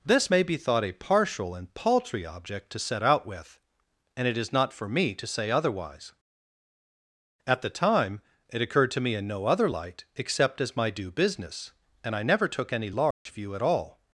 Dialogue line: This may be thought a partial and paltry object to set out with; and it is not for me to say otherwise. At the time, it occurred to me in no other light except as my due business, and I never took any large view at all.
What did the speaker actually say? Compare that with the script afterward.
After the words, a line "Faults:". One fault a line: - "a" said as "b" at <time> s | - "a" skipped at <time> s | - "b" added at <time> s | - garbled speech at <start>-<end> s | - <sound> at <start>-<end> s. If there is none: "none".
This may be thought a partial and paltry object to set out with; and it is not for me to say otherwise. At the time, it occurred to me in no other light except as my due business, and I never took any large view at all.
Faults:
- dropout at 13.1-13.3 s